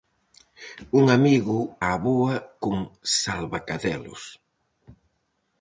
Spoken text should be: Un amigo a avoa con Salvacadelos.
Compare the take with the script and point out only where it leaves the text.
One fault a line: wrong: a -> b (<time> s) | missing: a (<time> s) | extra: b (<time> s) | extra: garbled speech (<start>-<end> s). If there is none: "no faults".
no faults